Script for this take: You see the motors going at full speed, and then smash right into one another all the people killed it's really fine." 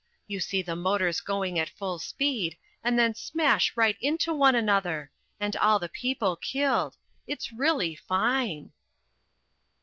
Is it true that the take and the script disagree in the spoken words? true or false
true